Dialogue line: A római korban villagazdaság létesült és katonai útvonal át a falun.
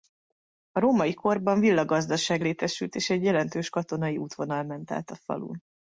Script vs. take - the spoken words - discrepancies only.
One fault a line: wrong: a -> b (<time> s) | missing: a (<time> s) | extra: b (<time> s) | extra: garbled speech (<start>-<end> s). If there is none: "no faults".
extra: egy jelentős (3.1 s)
extra: ment (4.6 s)